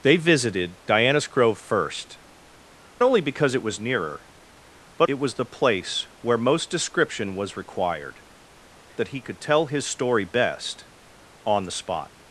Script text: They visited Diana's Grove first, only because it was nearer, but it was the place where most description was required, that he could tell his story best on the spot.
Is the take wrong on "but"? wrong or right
right